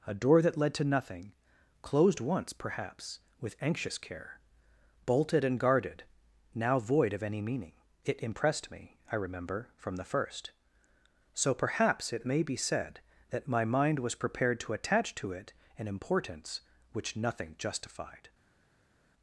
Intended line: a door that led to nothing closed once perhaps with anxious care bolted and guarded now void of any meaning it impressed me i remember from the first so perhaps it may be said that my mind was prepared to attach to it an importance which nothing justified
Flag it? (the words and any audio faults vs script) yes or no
no